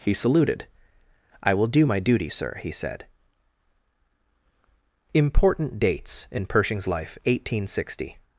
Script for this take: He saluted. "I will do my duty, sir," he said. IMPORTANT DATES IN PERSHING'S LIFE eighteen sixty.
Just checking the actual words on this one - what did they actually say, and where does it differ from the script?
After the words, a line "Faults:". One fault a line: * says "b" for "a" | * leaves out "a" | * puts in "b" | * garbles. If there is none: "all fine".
He saluted. "I will do my duty, sir," he said. IMPORTANT DATES IN PERSHING'S LIFE eighteen sixty.
Faults:
all fine